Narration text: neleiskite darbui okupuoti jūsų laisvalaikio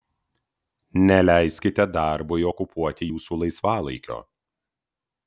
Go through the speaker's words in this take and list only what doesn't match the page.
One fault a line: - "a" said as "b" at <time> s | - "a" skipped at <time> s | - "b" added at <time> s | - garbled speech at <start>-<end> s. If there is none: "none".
none